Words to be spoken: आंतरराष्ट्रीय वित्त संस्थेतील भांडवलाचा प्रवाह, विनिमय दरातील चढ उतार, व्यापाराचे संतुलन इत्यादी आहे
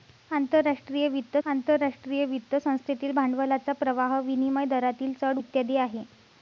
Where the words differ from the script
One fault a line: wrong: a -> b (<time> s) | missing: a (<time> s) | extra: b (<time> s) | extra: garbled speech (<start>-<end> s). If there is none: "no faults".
extra: आंतरराष्ट्रीय वित्त (1.5 s)
missing: उतार व्यापाराचे संतुलन (5.4 s)